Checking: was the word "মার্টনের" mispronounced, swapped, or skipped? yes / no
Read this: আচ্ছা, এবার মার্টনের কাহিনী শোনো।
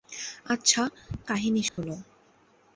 yes